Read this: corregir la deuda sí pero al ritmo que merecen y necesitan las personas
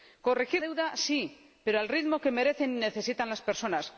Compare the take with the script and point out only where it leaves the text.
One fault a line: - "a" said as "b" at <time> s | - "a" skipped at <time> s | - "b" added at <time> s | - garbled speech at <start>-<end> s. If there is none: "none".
- "la" skipped at 0.6 s